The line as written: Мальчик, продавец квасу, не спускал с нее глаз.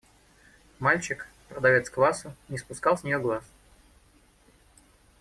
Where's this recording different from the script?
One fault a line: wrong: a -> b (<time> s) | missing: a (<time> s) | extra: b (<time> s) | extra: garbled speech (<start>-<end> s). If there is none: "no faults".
no faults